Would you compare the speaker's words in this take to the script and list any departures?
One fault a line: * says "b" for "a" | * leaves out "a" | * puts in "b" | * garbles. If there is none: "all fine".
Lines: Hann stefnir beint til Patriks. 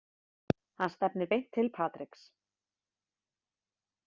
all fine